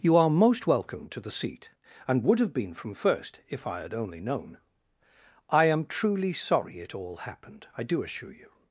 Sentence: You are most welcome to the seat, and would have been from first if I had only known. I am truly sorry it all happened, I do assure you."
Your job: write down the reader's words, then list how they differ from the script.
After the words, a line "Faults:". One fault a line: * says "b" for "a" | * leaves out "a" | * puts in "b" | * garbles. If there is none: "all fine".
You are most welcome to the seat, and would have been from first if I had only known. I am truly sorry it all happened, I do assure you."
Faults:
all fine